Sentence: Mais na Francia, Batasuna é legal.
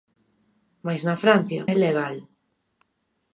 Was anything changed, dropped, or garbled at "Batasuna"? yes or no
yes